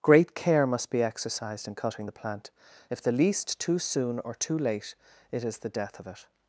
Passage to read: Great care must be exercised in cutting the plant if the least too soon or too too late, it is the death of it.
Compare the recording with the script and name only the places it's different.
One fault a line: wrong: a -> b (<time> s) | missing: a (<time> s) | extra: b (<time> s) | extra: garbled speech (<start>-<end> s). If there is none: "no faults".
missing: too (4.6 s)